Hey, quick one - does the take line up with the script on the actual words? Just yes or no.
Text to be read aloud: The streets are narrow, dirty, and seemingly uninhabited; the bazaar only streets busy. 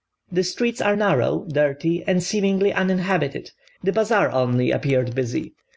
no